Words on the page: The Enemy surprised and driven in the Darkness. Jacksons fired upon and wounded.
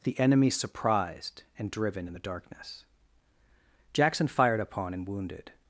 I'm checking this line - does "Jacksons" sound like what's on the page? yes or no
no